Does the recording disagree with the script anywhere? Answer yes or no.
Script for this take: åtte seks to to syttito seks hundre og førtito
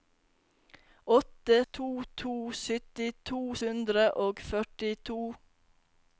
yes